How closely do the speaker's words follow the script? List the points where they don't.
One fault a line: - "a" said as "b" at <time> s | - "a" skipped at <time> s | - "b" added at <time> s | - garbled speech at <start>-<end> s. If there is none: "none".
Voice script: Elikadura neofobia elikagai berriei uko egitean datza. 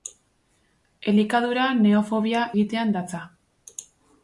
- "elikagai berriei uko" skipped at 2.5 s